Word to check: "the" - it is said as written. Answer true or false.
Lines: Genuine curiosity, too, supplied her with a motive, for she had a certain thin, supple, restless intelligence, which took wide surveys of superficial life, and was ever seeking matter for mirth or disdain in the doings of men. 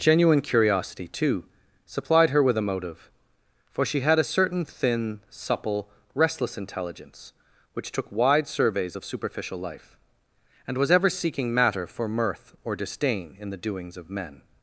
true